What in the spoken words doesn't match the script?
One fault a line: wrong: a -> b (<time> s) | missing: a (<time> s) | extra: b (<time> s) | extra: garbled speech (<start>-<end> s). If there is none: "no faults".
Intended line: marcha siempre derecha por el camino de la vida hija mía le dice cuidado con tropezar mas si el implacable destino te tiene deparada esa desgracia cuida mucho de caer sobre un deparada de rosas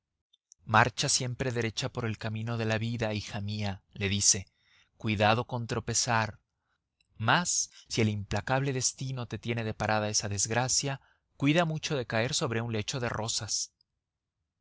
wrong: deparada -> lecho (12.7 s)